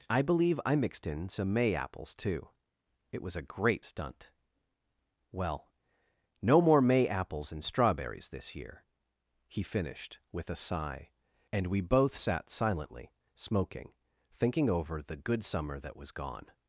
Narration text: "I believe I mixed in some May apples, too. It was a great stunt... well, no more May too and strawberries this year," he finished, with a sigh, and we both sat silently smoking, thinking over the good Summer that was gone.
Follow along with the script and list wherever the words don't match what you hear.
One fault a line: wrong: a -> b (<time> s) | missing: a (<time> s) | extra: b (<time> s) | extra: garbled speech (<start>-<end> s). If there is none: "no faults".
wrong: too -> apples (7.1 s)